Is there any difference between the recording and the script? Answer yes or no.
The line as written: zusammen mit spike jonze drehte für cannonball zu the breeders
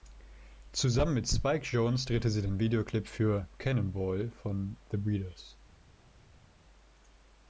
yes